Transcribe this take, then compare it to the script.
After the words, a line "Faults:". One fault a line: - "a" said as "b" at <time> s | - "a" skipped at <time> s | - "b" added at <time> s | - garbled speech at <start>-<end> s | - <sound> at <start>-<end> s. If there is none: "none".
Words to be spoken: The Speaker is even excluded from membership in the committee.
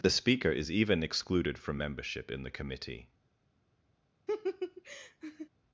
The Speaker is even excluded from membership in the committee.
Faults:
- laugh at 4.3-5.5 s